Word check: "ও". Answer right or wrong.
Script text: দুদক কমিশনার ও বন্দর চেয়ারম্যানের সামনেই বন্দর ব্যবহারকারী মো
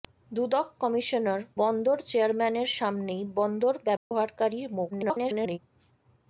wrong